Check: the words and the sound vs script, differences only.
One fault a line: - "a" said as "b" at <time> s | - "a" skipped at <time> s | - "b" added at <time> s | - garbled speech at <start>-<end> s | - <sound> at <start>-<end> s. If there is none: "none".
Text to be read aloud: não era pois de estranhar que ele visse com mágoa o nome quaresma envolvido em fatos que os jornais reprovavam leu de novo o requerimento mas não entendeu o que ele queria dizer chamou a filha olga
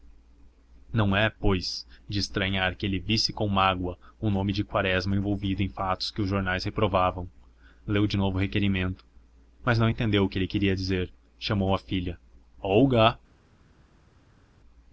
- "era" said as "é" at 1.1 s
- "de" added at 4.5 s